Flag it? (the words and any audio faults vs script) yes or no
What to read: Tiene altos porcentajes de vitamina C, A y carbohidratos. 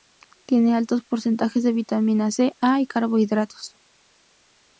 no